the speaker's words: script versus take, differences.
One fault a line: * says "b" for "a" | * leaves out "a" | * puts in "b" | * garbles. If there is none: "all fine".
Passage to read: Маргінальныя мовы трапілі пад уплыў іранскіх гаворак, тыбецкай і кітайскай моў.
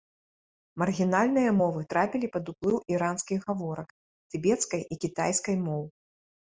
all fine